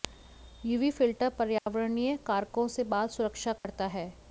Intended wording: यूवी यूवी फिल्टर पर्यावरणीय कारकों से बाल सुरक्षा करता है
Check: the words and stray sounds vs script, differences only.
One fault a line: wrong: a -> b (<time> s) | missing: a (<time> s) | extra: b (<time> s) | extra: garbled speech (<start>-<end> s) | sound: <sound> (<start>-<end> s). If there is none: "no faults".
missing: यूवी (0.9 s)
sound: dropout (1.6-1.7 s)
sound: dropout (3.6-3.6 s)